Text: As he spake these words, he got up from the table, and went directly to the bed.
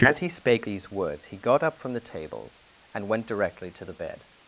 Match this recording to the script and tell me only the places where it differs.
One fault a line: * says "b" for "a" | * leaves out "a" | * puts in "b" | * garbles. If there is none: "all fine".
* says "tables" for "table"